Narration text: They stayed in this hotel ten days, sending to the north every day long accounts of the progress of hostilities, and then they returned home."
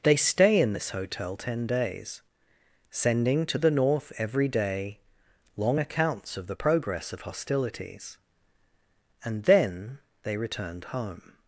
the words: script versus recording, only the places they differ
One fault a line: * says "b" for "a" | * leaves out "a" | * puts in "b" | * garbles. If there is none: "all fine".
* says "stay" for "stayed"